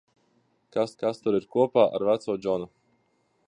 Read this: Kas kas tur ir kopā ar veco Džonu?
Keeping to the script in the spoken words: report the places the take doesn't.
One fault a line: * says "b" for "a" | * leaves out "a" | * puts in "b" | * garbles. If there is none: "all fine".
all fine